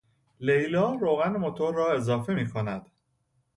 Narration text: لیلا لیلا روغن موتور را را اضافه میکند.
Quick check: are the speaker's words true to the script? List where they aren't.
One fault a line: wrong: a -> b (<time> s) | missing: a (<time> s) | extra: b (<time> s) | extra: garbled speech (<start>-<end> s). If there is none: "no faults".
missing: لیلا (0.9 s)
missing: را (1.9 s)